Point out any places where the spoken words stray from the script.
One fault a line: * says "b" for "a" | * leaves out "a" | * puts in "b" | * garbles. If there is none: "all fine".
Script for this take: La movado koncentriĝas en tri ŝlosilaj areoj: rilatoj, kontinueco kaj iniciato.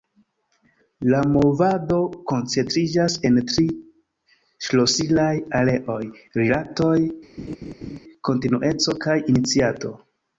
all fine